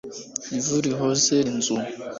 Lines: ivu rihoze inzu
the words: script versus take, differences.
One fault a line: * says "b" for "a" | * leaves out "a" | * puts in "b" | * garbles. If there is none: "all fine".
all fine